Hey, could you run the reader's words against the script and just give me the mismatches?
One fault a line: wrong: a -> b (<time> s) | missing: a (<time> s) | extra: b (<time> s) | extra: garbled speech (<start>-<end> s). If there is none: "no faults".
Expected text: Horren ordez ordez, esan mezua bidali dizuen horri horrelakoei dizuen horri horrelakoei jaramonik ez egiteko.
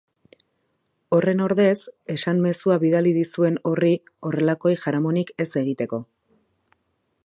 missing: ordez (1.8 s)
missing: dizuen horri horrelakoei (4.8 s)